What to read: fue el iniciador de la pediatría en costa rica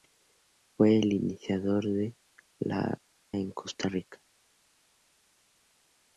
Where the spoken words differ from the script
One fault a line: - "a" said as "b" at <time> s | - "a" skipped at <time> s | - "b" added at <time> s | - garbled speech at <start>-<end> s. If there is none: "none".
- "pediatría" skipped at 3.0 s